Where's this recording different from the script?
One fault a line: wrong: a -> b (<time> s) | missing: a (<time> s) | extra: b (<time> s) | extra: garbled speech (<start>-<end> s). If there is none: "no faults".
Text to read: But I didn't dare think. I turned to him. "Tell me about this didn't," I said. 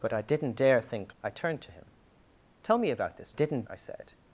no faults